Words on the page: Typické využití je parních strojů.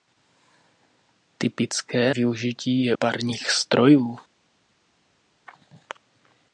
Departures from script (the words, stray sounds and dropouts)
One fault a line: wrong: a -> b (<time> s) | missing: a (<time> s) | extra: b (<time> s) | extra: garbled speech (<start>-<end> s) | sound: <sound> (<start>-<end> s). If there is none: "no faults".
no faults